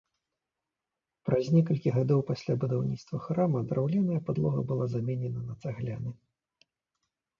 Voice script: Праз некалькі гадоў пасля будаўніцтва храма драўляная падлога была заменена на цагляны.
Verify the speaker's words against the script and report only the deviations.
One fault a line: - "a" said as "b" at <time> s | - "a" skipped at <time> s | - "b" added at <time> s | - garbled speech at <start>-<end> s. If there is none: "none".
none